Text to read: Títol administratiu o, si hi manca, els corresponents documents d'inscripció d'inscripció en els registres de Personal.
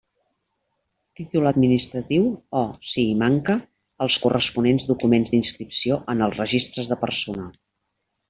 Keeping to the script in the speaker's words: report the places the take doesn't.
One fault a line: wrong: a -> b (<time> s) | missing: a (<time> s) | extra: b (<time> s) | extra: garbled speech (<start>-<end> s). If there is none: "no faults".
missing: d'inscripció (6.0 s)